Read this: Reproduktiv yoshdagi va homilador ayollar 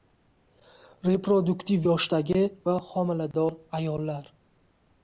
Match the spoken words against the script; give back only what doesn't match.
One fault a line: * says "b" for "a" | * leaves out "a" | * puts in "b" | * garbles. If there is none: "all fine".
all fine